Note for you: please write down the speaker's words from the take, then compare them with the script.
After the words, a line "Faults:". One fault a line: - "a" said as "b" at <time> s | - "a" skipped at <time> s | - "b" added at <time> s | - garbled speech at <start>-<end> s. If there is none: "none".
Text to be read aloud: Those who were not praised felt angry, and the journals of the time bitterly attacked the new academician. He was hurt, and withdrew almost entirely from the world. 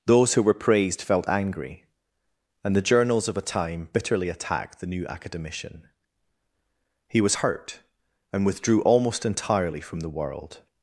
Those who were praised felt angry, and the journals of a time bitterly attacked the new academician. He was hurt, and withdrew almost entirely from the world.
Faults:
- "not" skipped at 0.5 s
- "the" said as "a" at 3.4 s